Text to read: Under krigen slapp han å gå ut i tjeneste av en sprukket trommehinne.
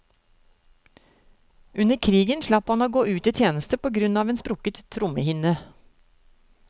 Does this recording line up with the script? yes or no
no